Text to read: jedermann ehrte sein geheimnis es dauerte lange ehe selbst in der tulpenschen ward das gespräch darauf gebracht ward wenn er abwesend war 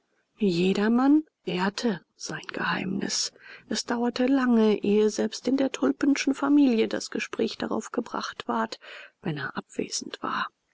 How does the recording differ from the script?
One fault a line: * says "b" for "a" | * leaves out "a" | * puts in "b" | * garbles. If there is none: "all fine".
* says "familie" for "ward"